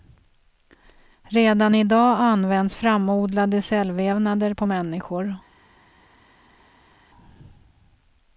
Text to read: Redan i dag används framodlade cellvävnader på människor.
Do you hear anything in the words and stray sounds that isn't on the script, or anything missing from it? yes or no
no